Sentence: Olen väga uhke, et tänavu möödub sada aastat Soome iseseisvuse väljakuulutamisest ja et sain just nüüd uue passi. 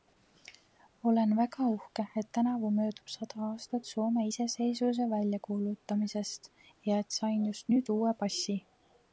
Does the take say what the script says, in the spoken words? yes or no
yes